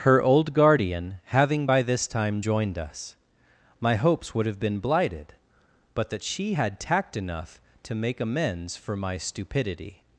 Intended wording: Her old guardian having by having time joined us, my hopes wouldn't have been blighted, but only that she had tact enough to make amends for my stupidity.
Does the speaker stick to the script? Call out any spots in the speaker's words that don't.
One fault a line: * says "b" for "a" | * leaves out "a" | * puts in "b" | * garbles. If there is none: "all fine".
* says "this" for "having"
* says "would" for "wouldn't"
* leaves out "only"